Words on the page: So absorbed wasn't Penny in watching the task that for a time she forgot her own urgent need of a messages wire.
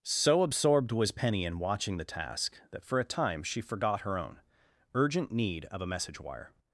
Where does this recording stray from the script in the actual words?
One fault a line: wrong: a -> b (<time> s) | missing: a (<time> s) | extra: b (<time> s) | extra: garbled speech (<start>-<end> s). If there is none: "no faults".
wrong: wasn't -> was (0.9 s)
wrong: messages -> message (5.9 s)